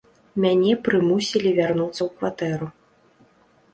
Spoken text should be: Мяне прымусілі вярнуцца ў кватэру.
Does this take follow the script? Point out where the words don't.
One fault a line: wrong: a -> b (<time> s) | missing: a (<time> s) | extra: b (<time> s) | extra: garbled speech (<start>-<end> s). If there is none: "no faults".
no faults